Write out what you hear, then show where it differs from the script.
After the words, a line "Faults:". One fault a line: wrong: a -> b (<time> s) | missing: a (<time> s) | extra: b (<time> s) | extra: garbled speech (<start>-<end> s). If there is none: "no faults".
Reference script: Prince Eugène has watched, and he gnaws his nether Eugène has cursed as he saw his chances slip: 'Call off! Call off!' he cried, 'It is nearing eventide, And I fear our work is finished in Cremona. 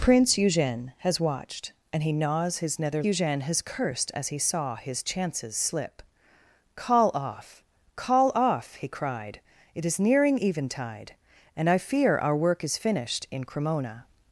Prince Eugène has watched, and he gnaws his nether Eugène has cursed as he saw his chances slip: 'Call off! Call off!' he cried, 'It is nearing eventide, And I fear our work is finished in Cremona.
Faults:
no faults